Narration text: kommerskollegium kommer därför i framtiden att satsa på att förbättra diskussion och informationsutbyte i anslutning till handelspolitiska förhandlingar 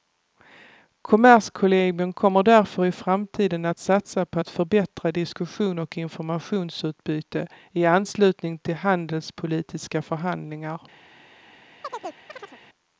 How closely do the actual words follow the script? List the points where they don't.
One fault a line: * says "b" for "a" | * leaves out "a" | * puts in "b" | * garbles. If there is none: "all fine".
all fine